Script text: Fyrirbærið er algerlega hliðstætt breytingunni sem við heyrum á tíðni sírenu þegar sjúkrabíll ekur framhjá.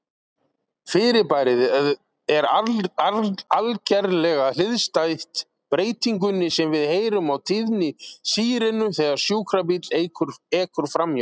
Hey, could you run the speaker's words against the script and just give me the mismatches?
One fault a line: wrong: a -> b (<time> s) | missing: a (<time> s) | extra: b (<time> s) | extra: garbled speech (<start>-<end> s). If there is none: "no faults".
no faults